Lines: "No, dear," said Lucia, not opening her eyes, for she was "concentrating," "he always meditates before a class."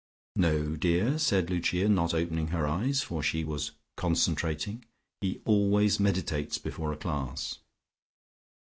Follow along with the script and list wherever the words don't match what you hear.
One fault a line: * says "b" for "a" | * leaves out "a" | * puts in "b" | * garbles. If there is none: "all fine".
all fine